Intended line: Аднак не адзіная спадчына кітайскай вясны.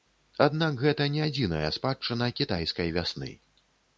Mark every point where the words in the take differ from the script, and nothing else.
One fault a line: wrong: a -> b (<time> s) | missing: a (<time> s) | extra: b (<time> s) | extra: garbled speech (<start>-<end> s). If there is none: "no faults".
extra: гэта (0.8 s)